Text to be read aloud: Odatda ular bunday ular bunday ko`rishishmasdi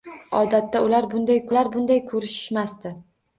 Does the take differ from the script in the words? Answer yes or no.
no